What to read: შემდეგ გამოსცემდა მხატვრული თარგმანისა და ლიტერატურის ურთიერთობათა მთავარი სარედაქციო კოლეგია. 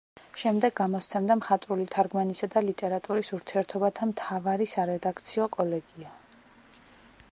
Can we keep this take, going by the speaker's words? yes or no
yes